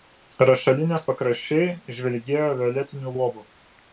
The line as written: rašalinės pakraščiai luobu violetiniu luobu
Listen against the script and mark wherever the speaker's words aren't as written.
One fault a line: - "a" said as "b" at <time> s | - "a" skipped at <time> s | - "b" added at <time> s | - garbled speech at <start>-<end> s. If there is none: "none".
- "luobu" said as "žvilgėjo" at 2.0 s